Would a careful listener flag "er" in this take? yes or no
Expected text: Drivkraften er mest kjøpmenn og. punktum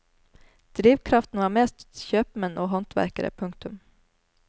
yes